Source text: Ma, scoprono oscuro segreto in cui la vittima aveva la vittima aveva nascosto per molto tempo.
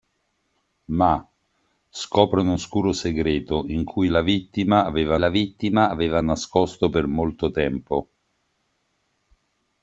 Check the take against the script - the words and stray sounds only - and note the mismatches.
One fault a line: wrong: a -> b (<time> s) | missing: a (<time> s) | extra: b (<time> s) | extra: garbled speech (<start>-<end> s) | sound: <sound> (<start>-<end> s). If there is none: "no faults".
no faults